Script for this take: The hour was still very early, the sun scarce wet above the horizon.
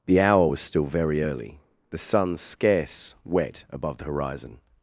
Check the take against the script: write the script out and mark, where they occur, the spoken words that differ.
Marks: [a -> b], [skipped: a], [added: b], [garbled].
The hour was still very early, the sun scarce wet above the horizon.